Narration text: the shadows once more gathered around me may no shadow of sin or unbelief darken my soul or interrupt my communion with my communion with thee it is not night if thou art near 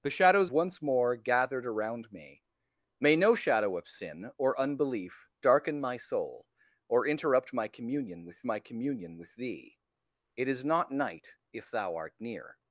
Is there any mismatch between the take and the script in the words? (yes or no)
no